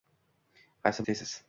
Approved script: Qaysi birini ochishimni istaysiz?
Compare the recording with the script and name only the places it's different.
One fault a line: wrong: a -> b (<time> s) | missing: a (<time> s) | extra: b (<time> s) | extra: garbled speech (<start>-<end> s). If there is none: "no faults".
missing: birini ochishimni (1.1 s)